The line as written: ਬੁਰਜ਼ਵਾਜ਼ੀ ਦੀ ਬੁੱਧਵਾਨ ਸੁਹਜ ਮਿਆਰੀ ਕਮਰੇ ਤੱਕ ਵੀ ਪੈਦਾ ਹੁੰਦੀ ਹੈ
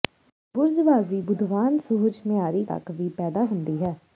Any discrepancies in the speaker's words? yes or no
yes